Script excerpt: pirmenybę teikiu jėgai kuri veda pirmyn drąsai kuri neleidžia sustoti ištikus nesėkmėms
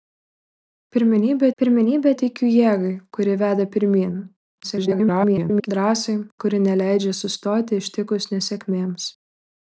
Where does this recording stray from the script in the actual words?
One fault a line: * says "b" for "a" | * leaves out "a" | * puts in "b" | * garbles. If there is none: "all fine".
* puts in "pirmenybę"
* garbles